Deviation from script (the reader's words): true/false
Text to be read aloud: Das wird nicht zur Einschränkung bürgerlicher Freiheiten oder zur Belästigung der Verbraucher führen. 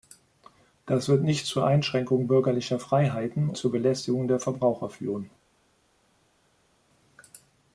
true